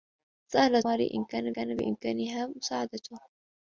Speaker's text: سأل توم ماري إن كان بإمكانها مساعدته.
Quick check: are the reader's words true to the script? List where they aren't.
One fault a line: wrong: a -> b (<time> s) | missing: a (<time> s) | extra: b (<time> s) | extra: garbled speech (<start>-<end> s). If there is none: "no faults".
missing: توم (0.8 s)
extra: كان (1.5 s)